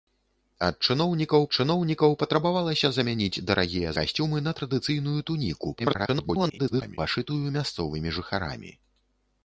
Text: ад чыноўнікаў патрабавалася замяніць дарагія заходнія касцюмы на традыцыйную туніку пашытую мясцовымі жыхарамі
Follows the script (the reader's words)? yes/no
no